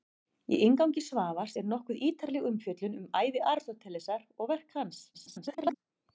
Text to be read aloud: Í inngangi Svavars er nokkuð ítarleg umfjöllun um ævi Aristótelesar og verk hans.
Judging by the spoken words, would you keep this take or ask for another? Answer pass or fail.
fail